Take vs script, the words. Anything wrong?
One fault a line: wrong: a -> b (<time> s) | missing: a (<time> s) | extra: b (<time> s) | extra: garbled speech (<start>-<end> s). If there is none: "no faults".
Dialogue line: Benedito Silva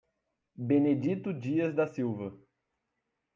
extra: Dias da (1.3 s)